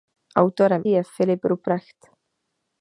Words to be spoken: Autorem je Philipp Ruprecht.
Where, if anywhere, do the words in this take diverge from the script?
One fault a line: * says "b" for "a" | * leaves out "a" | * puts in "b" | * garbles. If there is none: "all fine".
all fine